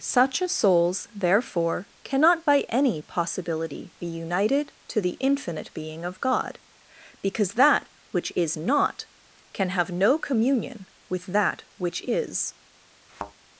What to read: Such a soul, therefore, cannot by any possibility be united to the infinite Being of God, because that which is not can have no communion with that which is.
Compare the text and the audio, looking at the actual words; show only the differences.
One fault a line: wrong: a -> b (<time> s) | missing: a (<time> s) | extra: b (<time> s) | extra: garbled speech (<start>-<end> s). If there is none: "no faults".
wrong: soul -> souls (0.5 s)